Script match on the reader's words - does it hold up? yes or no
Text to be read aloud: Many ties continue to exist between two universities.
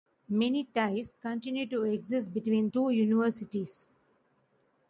yes